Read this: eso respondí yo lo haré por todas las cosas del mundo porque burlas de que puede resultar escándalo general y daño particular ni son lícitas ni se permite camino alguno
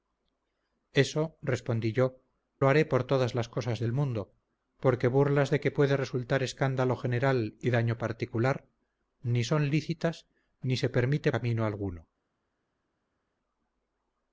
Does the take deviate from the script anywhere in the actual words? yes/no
no